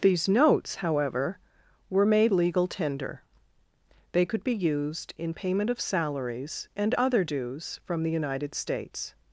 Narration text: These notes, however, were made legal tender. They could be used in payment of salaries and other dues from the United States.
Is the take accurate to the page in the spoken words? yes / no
yes